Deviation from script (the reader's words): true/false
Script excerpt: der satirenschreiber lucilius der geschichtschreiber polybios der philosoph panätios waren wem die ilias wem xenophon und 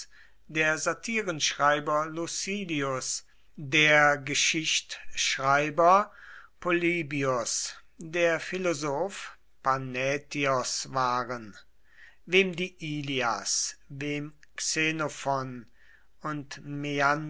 false